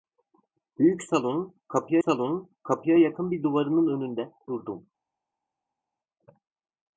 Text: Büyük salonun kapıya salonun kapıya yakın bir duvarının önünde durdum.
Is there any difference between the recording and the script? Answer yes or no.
no